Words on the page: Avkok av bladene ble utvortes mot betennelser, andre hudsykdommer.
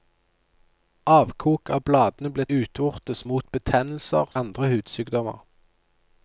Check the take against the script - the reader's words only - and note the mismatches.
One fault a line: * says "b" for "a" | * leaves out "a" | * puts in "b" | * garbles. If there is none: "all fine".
all fine